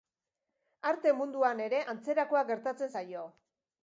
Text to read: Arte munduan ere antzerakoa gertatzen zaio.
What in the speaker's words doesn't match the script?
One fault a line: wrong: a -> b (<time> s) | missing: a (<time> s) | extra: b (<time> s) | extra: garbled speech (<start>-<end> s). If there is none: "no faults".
no faults